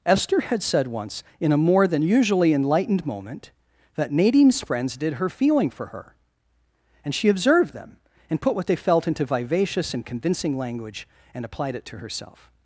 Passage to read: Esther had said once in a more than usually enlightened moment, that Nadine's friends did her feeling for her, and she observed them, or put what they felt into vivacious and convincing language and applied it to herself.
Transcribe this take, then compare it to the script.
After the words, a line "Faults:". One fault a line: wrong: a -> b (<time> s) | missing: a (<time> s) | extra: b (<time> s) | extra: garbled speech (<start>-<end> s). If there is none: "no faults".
Esther had said once in a more than usually enlightened moment, that Nadine's friends did her feeling for her, and she observed them, and put what they felt into vivacious and convincing language and applied it to herself.
Faults:
wrong: or -> and (8.3 s)